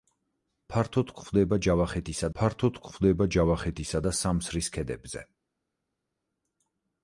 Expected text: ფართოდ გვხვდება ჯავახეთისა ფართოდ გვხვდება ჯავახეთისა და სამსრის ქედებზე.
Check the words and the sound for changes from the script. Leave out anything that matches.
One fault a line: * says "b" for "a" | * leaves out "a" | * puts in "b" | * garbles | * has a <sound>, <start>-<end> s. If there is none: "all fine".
all fine